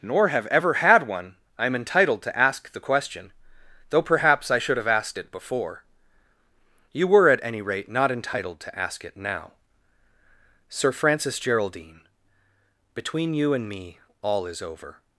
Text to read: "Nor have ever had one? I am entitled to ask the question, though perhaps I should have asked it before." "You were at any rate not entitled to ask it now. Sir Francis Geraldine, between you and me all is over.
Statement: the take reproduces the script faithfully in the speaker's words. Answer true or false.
true